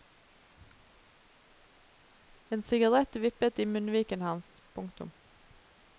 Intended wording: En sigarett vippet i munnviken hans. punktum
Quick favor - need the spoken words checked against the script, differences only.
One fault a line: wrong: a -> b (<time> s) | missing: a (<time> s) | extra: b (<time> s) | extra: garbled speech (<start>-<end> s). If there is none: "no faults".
no faults